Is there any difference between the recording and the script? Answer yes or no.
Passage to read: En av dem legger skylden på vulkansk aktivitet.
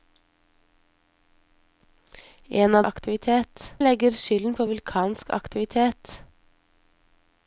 yes